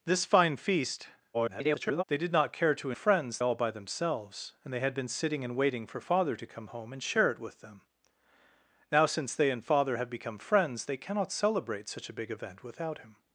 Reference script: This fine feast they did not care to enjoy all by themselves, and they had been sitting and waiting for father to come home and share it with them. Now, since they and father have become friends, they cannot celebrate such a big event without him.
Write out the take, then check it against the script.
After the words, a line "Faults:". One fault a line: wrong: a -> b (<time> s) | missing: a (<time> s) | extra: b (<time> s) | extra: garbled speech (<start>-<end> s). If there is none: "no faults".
This fine feast [garbled] they did not care to friends all by themselves, and they had been sitting and waiting for father to come home and share it with them. Now, since they and father have become friends, they cannot celebrate such a big event without him.
Faults:
extra: garbled speech (1.3-2.0 s)
wrong: enjoy -> friends (2.9 s)